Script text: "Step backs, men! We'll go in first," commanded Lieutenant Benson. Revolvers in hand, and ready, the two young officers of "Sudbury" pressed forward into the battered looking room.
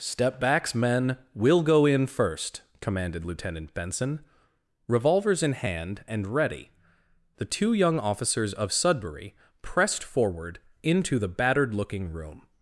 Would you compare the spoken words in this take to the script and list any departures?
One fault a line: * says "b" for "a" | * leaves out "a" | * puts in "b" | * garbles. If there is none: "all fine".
all fine